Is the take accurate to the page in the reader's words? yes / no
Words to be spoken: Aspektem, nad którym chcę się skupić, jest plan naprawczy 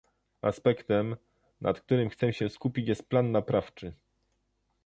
yes